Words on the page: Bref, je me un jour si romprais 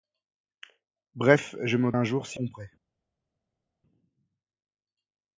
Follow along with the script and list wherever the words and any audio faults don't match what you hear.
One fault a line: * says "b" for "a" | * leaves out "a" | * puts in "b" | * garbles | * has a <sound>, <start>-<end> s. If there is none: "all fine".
all fine